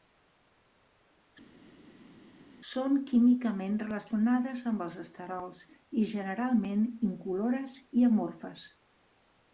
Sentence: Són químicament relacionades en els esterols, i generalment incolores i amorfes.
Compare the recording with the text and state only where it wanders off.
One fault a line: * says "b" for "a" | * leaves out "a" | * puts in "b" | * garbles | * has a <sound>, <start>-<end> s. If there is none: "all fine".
* says "amb" for "en"